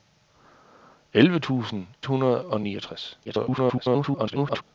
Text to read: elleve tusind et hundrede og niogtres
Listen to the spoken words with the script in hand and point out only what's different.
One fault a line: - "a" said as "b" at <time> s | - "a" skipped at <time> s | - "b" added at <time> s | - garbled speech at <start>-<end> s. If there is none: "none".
- "et" skipped at 1.9 s
- garbled speech at 3.2-4.6 s